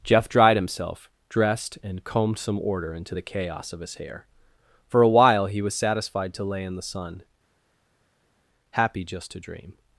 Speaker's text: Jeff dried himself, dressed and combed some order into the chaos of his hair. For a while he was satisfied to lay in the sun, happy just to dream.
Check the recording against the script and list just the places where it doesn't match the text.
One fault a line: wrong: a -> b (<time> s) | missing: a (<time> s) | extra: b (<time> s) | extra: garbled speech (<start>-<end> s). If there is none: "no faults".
no faults